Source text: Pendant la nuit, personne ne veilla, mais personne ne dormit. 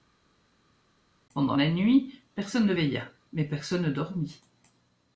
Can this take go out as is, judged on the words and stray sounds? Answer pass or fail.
pass